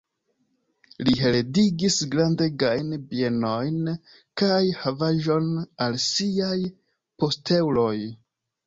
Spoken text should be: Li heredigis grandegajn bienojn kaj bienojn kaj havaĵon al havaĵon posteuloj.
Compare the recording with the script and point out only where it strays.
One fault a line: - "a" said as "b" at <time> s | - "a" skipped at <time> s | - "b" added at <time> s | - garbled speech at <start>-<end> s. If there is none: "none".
- "bienojn kaj" skipped at 4.6 s
- "havaĵon" said as "siaj" at 6.1 s